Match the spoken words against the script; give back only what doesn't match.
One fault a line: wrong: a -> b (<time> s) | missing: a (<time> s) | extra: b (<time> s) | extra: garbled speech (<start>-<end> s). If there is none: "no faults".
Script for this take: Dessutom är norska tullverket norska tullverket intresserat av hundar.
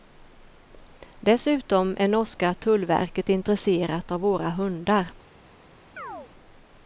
missing: norska tullverket (3.3 s)
extra: våra (4.2 s)